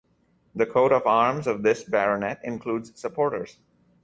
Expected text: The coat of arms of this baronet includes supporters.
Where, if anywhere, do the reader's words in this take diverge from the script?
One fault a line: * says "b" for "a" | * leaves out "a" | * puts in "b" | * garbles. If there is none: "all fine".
all fine